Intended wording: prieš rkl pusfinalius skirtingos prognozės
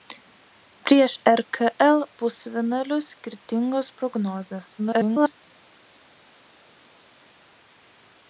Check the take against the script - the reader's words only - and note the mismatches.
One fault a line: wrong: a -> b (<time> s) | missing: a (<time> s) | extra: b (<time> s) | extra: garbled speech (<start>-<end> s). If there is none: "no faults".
extra: garbled speech (4.8-5.3 s)